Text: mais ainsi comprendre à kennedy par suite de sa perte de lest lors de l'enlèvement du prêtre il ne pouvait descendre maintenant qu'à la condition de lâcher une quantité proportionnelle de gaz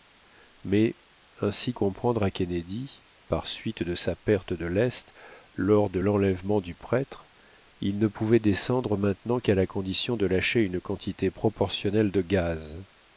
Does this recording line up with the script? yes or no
yes